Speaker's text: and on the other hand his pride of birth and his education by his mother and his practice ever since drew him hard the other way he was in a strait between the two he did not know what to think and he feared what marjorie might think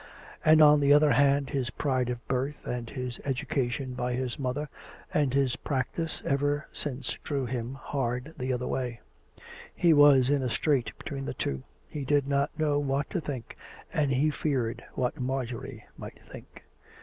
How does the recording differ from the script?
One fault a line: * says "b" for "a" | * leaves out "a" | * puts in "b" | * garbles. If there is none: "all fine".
all fine